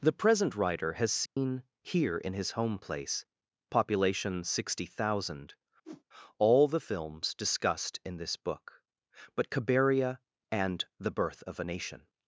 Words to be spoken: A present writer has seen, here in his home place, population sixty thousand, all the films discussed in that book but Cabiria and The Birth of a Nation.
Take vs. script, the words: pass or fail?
fail